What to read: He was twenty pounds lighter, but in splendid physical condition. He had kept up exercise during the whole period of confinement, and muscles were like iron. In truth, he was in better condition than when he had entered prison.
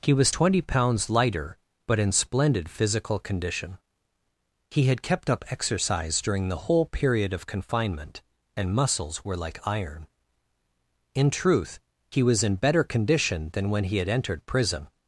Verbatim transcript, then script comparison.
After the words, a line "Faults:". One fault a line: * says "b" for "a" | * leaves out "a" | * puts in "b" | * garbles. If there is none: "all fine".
He was twenty pounds lighter, but in splendid physical condition. He had kept up exercise during the whole period of confinement, and muscles were like iron. In truth, he was in better condition than when he had entered prison.
Faults:
all fine